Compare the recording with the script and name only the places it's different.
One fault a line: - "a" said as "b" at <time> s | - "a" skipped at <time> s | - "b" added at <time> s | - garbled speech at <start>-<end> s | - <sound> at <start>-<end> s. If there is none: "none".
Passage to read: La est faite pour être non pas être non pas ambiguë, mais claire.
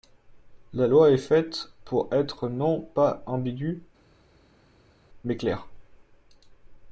- "loi" added at 0.9 s
- "être non pas" skipped at 3.2 s